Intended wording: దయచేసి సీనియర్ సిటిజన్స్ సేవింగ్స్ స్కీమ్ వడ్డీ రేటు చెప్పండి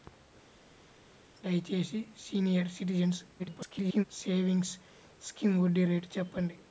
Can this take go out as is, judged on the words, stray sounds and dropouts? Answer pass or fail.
fail